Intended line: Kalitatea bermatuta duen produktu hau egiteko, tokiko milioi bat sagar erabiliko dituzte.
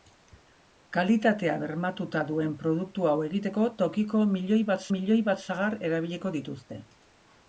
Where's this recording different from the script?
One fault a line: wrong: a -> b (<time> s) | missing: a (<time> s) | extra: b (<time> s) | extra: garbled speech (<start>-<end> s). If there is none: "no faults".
extra: milioi bat (5.0 s)